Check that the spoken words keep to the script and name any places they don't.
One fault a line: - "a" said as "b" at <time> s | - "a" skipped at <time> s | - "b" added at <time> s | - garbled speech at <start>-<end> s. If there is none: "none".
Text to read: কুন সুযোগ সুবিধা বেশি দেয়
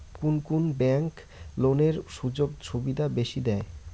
- "কুন ব্যাংক লোনের" added at 0.4 s